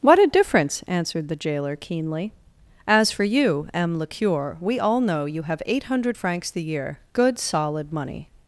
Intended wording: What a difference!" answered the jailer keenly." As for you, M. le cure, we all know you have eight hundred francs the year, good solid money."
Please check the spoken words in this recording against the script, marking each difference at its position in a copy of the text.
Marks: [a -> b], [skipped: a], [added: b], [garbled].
What a difference!" answered the jailer keenly." As for you, M. le cure, we all know you have eight hundred francs the year, good solid money."